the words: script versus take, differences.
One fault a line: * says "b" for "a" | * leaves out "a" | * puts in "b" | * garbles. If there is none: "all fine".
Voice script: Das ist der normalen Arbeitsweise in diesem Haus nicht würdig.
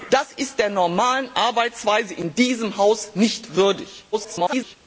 * garbles